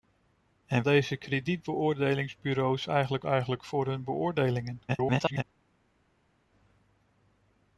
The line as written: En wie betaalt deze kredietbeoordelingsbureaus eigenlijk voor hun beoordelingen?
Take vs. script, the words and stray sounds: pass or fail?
fail